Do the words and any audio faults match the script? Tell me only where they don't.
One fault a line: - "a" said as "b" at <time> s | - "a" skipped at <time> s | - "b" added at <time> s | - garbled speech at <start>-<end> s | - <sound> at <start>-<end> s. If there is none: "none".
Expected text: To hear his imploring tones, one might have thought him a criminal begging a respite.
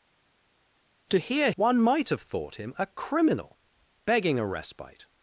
- "his imploring tones" skipped at 1.5 s